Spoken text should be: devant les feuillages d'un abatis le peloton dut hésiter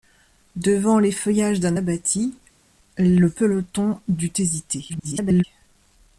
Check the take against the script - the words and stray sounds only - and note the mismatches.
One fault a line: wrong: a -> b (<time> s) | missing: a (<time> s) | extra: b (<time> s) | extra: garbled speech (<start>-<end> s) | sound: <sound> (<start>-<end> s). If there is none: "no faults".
extra: garbled speech (4.9-5.4 s)